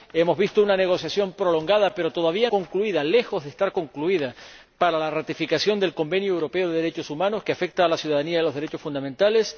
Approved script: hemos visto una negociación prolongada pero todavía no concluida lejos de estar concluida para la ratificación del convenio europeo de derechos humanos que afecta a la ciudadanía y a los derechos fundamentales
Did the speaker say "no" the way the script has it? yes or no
no